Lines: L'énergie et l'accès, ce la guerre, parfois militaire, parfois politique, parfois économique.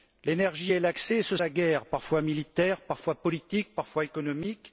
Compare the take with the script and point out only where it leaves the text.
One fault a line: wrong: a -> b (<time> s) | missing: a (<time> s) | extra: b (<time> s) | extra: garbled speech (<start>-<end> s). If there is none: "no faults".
no faults